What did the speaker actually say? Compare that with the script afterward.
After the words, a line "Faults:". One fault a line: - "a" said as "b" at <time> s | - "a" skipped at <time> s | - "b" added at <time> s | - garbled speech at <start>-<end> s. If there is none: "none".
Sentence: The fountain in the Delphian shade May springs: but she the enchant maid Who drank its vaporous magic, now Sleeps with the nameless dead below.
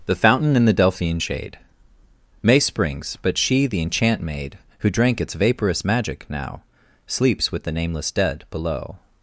The fountain in the Delphian shade May springs: but she the enchant maid Who drank its vaporous magic, now Sleeps with the nameless dead below.
Faults:
none